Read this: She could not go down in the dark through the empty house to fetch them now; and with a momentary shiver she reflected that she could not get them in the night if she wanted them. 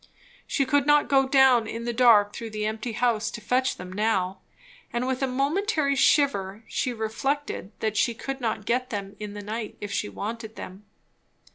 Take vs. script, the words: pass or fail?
pass